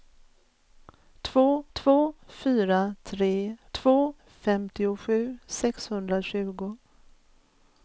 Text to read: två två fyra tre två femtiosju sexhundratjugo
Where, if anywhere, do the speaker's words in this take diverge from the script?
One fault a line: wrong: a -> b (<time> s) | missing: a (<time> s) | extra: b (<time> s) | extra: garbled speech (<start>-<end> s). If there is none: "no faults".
no faults